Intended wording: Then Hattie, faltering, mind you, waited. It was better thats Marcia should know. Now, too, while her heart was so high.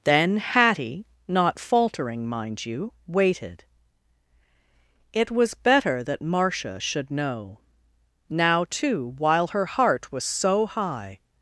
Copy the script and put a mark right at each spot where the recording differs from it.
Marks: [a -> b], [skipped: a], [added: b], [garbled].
Then Hattie, [added: not] faltering, mind you, waited. It was better [thats -> that] Marcia should know. Now, too, while her heart was so high.